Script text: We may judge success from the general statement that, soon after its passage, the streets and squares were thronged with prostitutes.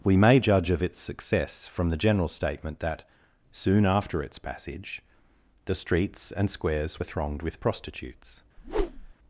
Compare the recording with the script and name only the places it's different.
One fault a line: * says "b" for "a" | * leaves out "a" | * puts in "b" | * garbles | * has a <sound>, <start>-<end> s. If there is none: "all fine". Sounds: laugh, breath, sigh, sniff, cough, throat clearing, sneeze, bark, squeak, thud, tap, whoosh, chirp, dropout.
* puts in "of its"
* has a whoosh, 8.6-9.1 s